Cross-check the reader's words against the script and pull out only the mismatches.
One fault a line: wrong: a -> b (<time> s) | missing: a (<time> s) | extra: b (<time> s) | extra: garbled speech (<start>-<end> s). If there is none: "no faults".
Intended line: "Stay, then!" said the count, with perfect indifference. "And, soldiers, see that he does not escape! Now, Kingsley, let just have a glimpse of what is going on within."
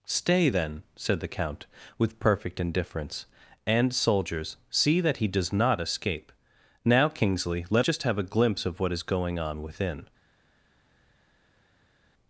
no faults